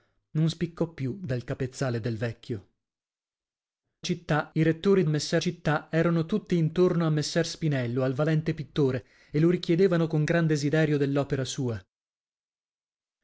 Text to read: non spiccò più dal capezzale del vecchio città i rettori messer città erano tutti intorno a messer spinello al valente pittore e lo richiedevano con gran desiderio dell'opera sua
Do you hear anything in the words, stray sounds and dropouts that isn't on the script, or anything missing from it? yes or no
no